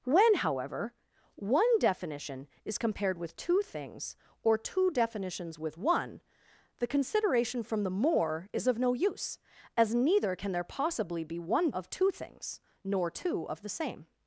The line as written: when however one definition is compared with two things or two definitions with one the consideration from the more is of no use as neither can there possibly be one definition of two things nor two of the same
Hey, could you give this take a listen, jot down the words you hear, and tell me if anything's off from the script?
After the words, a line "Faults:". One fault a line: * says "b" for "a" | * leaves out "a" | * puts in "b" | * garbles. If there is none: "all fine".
when however one definition is compared with two things or two definitions with one the consideration from the more is of no use as neither can there possibly be one of two things nor two of the same
Faults:
* leaves out "definition"